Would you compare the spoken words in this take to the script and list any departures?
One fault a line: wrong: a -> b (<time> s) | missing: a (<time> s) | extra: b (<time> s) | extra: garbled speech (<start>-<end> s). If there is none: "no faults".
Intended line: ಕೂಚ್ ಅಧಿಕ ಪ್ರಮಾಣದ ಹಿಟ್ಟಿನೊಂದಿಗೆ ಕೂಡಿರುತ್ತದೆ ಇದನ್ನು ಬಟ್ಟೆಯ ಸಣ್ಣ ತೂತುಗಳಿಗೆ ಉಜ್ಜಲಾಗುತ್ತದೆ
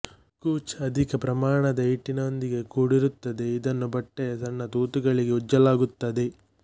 no faults